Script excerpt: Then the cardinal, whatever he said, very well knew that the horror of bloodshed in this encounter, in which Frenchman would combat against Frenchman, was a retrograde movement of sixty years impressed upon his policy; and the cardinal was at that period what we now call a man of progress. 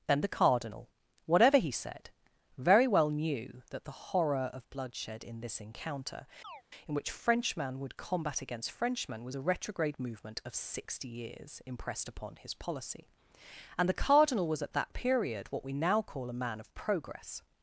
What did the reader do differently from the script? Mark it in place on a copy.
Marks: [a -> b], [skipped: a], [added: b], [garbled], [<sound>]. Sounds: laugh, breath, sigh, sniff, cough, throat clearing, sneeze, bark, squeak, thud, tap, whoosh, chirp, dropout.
Then the cardinal, whatever he said, very well knew that the horror of bloodshed in this encounter, [chirp] in which Frenchman would combat against Frenchman, was a retrograde movement of sixty years impressed upon his policy; and the cardinal was at that period what we now call a man of progress.